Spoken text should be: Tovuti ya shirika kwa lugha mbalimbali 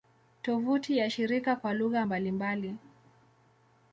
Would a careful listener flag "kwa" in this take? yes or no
no